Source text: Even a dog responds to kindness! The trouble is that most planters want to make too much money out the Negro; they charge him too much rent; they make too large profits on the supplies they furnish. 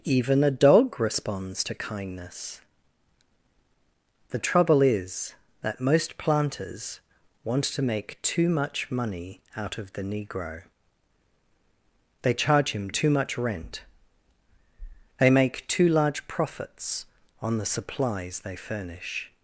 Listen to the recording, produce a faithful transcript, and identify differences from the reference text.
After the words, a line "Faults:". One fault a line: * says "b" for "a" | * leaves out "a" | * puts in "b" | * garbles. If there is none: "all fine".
Even a dog responds to kindness! The trouble is that most planters want to make too much money out of the Negro; they charge him too much rent; they make too large profits on the supplies they furnish.
Faults:
* puts in "of"